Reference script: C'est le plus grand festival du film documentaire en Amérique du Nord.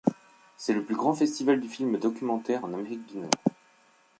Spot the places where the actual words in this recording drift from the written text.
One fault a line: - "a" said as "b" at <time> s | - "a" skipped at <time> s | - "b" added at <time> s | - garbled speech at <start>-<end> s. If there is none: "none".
none